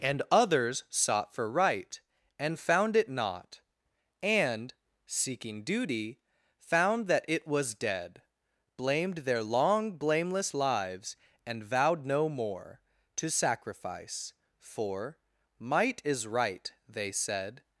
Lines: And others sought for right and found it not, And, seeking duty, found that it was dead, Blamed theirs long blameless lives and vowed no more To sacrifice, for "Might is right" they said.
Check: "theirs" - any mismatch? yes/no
yes